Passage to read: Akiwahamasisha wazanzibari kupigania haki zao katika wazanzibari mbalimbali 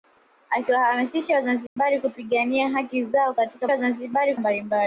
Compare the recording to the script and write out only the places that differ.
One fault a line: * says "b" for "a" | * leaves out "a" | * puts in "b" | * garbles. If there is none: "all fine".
all fine